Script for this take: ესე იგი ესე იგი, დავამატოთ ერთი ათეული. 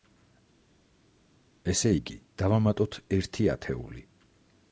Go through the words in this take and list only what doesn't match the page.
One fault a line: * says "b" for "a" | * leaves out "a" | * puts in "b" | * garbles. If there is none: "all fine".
* leaves out "ესე იგი"